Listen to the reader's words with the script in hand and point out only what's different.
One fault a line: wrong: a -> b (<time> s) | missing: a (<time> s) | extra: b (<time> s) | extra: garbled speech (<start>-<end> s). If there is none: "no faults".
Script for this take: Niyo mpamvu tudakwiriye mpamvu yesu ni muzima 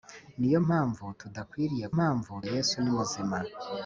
no faults